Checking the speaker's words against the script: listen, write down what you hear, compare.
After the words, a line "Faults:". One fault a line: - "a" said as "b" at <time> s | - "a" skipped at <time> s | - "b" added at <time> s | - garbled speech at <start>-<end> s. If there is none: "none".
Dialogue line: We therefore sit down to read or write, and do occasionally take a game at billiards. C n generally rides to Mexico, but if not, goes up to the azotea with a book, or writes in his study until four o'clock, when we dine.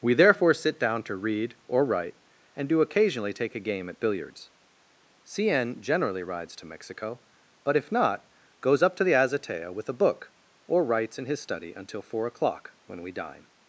We therefore sit down to read or write, and do occasionally take a game at billiards. C n generally rides to Mexico, but if not, goes up to the azotea with a book, or writes in his study until four o'clock, when we dine.
Faults:
none